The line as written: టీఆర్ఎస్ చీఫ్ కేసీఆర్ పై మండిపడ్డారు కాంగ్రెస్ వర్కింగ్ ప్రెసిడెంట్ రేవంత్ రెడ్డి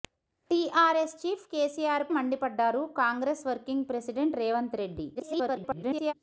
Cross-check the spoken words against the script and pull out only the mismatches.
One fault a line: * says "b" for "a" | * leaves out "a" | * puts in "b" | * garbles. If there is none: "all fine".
* leaves out "పై"
* garbles